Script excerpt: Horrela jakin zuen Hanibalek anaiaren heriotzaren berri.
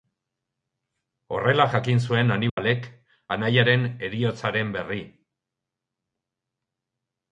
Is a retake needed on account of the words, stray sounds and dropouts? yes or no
yes